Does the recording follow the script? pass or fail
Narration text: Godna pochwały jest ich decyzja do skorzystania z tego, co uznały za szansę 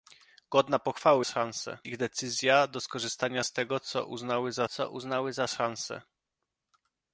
fail